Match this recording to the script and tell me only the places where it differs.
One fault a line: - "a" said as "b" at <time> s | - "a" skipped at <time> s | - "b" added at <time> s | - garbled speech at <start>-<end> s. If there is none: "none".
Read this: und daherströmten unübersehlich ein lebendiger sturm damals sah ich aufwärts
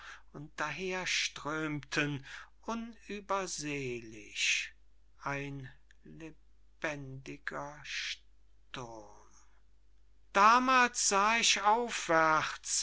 none